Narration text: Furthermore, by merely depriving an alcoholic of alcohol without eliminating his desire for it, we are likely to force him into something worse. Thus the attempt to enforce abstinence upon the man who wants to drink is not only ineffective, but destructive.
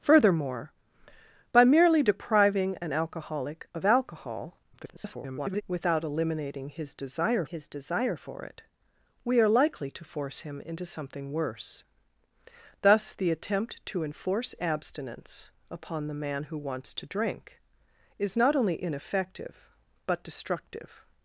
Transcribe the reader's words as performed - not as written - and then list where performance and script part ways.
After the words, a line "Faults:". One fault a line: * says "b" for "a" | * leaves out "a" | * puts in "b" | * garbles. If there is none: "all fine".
Furthermore, by merely depriving an alcoholic of alcohol [garbled] without eliminating his desire his desire for it, we are likely to force him into something worse. Thus the attempt to enforce abstinence upon the man who wants to drink is not only ineffective, but destructive.
Faults:
* garbles
* puts in "his desire"